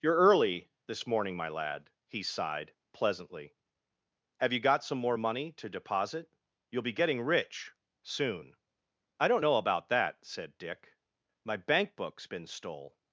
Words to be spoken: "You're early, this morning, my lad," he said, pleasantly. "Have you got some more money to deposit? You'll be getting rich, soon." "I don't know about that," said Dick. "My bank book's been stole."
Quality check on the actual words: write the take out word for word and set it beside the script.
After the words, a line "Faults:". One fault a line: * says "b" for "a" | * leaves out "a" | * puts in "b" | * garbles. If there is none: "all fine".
"You're early, this morning, my lad," he sighed, pleasantly. "Have you got some more money to deposit? You'll be getting rich, soon." "I don't know about that," said Dick. "My bank book's been stole."
Faults:
* says "sighed" for "said"